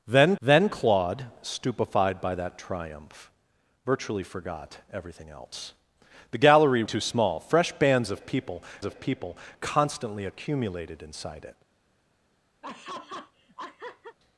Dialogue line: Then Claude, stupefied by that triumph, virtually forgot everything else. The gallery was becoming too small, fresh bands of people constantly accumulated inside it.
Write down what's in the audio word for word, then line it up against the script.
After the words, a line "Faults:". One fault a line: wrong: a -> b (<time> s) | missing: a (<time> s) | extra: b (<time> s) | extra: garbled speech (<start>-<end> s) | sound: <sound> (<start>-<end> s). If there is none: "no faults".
Then then Claude, stupefied by that triumph, virtually forgot everything else. The gallery too small, fresh bands of people of people constantly accumulated inside it.
Faults:
extra: then (0.4 s)
missing: was becoming (6.8 s)
extra: of people (8.8 s)
sound: laugh (12.6-14.2 s)